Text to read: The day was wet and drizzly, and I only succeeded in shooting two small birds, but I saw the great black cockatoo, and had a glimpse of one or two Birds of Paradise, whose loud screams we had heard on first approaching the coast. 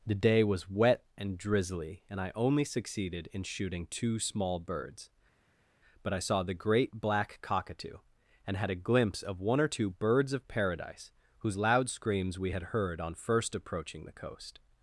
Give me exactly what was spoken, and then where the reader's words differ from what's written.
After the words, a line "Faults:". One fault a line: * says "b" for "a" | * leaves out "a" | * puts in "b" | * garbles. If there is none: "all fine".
The day was wet and drizzly, and I only succeeded in shooting two small birds, but I saw the great black cockatoo, and had a glimpse of one or two Birds of Paradise, whose loud screams we had heard on first approaching the coast.
Faults:
all fine